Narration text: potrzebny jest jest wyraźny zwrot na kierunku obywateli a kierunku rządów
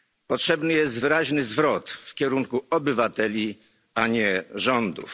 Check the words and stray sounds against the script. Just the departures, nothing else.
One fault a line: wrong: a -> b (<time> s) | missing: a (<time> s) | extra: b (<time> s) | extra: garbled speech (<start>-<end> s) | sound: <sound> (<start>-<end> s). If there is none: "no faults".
missing: jest (1.0 s)
wrong: na -> w (1.9 s)
wrong: kierunku -> nie (4.1 s)